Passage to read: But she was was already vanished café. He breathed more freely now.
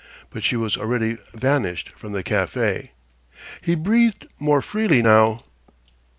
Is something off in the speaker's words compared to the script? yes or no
yes